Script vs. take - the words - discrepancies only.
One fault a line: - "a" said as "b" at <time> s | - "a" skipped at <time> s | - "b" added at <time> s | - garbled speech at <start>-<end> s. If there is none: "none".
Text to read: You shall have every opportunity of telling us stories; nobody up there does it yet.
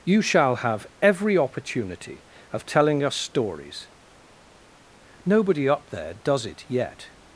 none